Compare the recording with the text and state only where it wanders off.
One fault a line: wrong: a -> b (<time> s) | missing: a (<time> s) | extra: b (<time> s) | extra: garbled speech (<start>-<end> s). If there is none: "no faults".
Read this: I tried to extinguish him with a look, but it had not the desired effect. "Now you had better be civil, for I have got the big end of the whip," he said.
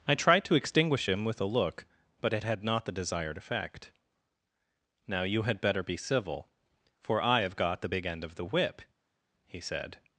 no faults